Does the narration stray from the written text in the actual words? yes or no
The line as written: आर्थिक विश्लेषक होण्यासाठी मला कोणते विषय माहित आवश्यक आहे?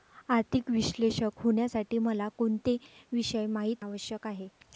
no